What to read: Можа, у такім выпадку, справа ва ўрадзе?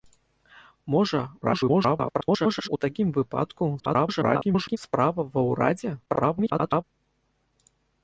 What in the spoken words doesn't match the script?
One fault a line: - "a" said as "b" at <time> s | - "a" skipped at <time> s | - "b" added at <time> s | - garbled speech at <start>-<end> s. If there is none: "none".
- garbled speech at 1.4-2.7 s
- garbled speech at 3.8-4.8 s
- garbled speech at 6.1-6.8 s